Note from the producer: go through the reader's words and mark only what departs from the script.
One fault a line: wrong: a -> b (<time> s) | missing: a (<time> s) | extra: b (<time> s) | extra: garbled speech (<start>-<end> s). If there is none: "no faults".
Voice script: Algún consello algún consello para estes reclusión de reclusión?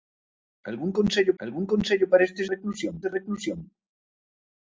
no faults